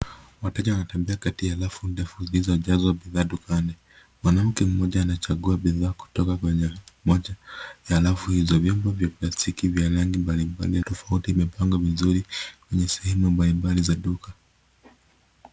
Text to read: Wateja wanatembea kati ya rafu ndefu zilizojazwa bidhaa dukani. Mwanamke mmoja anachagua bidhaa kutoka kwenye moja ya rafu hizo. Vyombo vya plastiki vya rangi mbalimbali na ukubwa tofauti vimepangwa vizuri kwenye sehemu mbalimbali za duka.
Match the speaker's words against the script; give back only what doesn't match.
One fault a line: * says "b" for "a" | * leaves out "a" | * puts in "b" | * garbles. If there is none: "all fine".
* leaves out "na ukubwa"